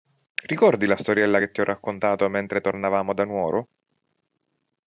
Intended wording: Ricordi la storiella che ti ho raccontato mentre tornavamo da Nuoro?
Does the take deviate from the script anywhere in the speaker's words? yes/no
no